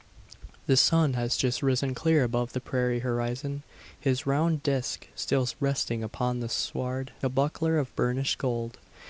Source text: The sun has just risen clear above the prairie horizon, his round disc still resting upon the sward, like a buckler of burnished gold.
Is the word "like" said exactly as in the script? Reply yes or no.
no